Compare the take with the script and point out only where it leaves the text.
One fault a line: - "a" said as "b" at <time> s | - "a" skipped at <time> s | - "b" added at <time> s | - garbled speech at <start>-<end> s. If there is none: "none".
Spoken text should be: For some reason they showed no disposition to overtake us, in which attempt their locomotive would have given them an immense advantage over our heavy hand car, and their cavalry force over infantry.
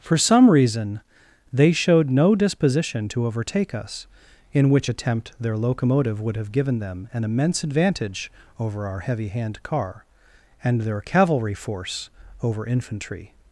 none